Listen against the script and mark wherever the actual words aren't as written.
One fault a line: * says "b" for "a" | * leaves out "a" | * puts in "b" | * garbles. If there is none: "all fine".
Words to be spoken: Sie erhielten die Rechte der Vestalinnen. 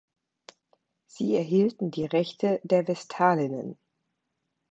all fine